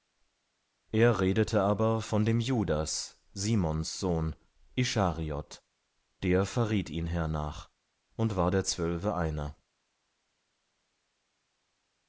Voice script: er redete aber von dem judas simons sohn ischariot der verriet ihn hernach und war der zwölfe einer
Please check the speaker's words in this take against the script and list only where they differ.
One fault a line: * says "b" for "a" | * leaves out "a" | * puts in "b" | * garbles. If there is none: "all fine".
all fine